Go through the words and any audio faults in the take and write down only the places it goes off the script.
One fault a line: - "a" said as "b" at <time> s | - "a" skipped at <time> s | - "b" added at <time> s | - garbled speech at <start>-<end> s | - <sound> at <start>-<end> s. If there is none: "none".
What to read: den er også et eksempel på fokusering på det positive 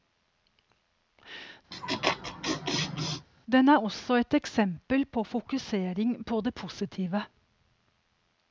- laugh at 1.7-3.3 s